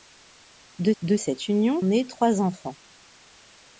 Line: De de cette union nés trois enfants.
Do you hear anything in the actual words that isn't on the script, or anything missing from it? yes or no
no